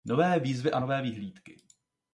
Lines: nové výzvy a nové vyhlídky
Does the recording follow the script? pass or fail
pass